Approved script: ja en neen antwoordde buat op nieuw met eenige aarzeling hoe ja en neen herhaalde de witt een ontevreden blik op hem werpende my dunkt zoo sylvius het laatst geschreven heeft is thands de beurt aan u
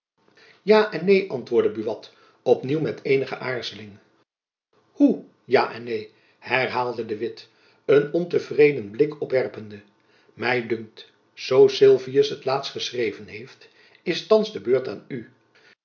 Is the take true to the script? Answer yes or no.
no